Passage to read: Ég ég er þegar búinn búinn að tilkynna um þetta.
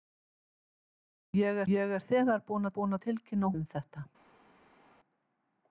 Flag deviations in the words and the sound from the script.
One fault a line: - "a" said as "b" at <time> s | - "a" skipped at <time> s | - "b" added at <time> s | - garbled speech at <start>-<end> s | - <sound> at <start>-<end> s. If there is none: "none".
none